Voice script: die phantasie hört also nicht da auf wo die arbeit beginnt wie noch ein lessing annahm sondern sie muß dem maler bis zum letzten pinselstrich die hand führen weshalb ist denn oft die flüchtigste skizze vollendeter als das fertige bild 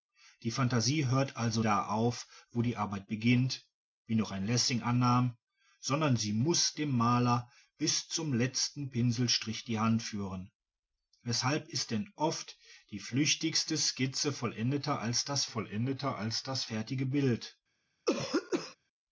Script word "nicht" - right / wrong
wrong